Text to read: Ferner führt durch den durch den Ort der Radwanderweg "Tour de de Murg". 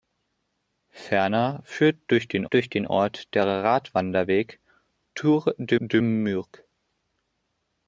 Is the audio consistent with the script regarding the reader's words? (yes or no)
yes